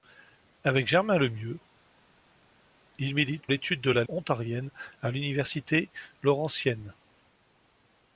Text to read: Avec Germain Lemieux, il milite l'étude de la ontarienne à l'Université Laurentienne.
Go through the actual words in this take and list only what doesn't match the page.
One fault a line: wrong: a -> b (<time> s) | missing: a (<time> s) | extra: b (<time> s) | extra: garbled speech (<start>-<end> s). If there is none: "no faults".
no faults